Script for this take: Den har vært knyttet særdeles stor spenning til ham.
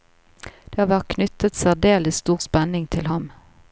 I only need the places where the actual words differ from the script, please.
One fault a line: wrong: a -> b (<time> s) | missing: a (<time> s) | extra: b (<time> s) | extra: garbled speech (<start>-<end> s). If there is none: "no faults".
wrong: Den -> Det (0.7 s)